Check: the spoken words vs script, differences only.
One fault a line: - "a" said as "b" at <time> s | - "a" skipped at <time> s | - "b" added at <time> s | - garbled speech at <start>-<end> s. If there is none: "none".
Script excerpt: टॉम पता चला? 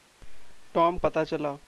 none